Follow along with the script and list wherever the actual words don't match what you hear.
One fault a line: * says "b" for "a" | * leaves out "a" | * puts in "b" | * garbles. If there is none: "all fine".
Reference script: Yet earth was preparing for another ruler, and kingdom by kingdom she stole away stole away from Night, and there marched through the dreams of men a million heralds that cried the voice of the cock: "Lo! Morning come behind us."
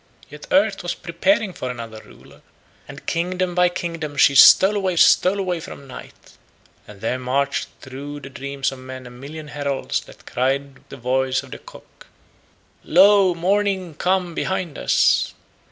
all fine